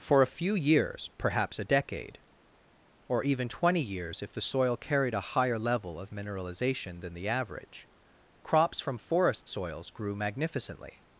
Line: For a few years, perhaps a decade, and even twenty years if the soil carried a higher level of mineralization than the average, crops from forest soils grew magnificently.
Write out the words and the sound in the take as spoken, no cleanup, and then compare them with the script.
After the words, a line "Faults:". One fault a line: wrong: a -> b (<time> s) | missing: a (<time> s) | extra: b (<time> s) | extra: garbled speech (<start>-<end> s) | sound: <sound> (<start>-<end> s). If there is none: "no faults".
For a few years, perhaps a decade, or even twenty years if the soil carried a higher level of mineralization than the average, crops from forest soils grew magnificently.
Faults:
wrong: and -> or (3.1 s)